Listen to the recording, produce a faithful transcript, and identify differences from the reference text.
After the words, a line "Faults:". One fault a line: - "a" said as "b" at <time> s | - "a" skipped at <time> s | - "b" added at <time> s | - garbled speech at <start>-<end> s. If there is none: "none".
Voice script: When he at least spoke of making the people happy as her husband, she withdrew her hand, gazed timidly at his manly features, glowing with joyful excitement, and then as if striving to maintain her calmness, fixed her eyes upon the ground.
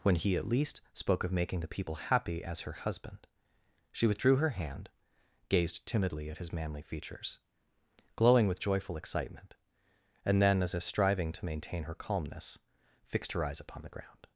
When he at least spoke of making the people happy as her husband, she withdrew her hand, gazed timidly at his manly features, glowing with joyful excitement, and then as if striving to maintain her calmness, fixed her eyes upon the ground.
Faults:
none